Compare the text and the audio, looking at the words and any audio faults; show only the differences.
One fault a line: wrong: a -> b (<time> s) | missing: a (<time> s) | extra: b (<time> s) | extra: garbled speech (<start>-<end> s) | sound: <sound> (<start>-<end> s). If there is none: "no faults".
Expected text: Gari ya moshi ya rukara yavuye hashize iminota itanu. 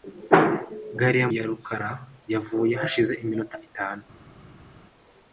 missing: moshi (1.3 s)